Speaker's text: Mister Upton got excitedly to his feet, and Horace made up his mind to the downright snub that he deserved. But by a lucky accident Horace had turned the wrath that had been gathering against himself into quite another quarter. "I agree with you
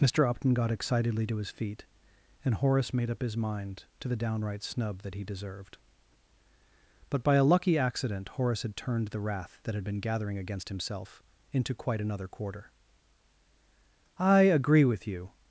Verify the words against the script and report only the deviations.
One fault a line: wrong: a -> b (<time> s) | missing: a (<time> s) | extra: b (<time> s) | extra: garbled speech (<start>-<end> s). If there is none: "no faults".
no faults